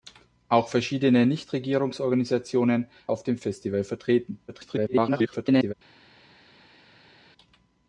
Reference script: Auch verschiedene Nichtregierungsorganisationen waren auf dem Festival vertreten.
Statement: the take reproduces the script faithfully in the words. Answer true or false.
false